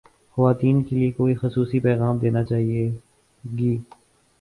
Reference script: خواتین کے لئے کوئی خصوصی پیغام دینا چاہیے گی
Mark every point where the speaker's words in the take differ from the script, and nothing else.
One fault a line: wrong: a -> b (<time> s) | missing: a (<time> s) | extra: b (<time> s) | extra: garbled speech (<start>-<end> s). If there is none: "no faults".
no faults